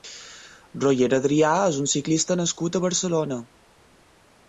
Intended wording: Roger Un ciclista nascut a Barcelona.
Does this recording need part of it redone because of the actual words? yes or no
yes